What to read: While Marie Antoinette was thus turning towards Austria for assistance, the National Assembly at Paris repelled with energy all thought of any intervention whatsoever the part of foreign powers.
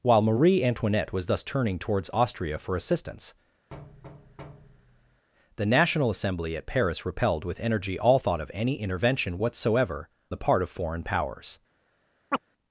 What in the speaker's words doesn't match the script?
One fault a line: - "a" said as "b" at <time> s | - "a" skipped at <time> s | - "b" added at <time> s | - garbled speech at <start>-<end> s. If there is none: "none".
none